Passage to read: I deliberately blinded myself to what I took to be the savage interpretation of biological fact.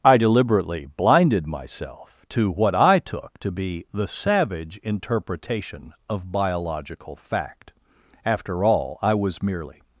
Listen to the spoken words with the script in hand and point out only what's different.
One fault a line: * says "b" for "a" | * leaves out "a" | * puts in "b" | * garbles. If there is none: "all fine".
* puts in "After all I was merely"